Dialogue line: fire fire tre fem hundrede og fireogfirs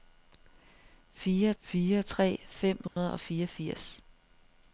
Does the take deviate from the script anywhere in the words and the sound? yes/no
yes